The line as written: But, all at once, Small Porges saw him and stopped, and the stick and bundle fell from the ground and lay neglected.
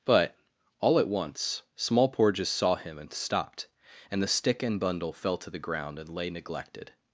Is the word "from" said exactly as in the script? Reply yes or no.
no